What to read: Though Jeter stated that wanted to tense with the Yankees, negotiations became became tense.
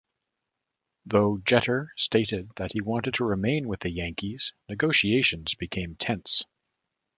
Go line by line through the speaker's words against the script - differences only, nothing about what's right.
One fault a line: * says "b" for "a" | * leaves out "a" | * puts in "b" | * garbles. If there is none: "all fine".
* puts in "he"
* says "remain" for "tense"
* leaves out "became"